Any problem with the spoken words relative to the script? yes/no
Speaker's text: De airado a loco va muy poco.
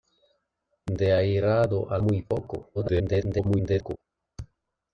yes